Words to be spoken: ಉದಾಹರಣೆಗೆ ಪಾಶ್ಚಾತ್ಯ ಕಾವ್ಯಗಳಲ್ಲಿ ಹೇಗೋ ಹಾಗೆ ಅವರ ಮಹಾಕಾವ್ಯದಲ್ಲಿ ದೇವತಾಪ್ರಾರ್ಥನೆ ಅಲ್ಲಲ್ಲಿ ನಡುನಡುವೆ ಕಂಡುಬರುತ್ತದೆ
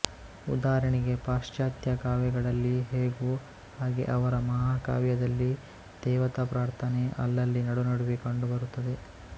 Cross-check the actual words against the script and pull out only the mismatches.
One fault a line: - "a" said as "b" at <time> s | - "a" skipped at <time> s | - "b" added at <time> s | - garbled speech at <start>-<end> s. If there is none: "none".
none